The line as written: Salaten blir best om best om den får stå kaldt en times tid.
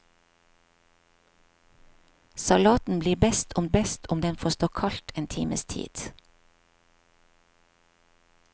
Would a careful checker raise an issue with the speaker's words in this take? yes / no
no